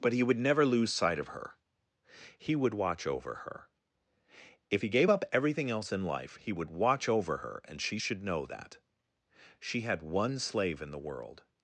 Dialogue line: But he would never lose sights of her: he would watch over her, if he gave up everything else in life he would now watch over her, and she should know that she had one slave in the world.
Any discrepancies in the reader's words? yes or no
yes